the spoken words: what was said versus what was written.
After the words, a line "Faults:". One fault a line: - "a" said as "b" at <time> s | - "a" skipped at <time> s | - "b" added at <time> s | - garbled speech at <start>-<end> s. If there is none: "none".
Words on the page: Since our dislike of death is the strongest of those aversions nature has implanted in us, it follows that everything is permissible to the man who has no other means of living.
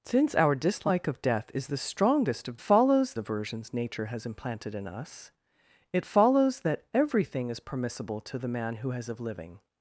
Since our dislike of death is the strongest of follows aversions nature has implanted in us, it follows that everything is permissible to the man who has of living.
Faults:
- "those" said as "follows" at 2.6 s
- "no other means" skipped at 9.1 s